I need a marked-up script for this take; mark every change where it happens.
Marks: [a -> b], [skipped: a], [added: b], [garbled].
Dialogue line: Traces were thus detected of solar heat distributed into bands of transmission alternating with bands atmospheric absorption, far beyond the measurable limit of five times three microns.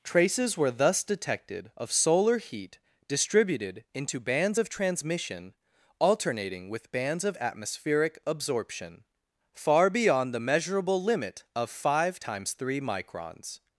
Traces were thus detected of solar heat distributed into bands of transmission alternating with bands [added: of] atmospheric absorption, far beyond the measurable limit of five times three microns.